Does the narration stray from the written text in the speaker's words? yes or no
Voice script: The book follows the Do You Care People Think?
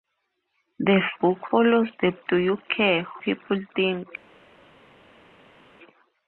no